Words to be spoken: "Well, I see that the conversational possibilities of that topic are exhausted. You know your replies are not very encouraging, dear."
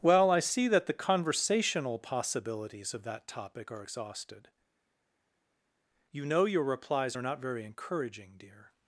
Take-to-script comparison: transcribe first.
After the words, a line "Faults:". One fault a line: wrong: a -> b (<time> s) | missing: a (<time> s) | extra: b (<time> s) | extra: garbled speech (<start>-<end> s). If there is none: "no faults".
"Well, I see that the conversational possibilities of that topic are exhausted. You know your replies are not very encouraging, dear."
Faults:
no faults